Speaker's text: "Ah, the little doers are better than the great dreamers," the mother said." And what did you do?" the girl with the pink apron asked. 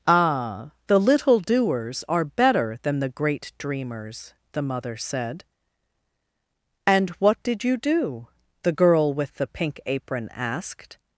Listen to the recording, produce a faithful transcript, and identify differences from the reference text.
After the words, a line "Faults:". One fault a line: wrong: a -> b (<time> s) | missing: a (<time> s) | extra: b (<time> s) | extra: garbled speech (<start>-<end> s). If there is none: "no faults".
"Ah, the little doers are better than the great dreamers," the mother said." And what did you do?" the girl with the pink apron asked.
Faults:
no faults